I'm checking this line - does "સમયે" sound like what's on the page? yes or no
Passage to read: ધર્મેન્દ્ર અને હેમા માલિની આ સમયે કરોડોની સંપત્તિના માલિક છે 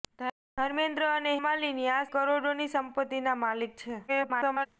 no